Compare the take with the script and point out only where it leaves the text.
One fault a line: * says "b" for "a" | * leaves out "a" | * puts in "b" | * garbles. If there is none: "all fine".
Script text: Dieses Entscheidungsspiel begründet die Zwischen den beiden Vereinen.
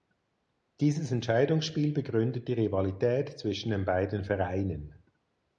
* puts in "Rivalität"